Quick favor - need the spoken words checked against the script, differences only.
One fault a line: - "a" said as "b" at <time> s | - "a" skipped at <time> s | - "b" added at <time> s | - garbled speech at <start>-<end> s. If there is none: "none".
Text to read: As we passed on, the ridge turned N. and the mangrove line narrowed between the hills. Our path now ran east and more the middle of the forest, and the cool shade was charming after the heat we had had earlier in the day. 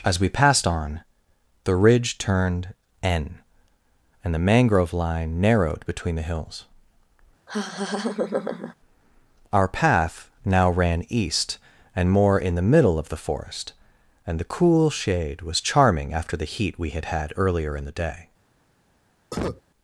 - "in" added at 12.4 s